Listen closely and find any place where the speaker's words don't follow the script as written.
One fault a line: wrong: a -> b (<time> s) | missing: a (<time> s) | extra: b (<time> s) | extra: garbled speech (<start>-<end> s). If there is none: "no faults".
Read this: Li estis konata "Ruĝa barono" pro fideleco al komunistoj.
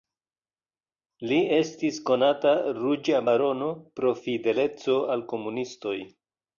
no faults